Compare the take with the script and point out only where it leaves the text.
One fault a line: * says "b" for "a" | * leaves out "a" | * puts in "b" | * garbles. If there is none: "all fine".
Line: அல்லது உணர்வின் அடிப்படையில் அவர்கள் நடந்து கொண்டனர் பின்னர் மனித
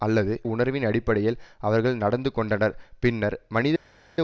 all fine